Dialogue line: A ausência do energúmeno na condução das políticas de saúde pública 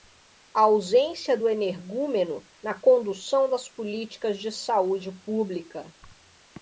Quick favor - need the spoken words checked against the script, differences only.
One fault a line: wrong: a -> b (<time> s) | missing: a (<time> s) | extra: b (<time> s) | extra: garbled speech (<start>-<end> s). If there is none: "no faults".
no faults